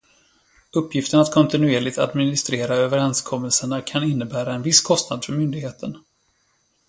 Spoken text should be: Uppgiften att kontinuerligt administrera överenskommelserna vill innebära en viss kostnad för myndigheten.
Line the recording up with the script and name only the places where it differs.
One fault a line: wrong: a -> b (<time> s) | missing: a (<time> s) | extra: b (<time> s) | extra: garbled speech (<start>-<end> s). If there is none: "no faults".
wrong: vill -> kan (3.8 s)